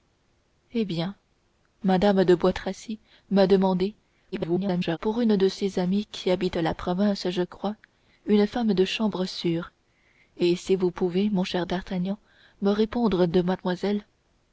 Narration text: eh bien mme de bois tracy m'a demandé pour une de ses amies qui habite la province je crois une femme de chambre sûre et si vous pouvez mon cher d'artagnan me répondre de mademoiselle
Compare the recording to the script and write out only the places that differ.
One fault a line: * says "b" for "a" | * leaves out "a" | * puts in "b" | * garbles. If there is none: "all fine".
* garbles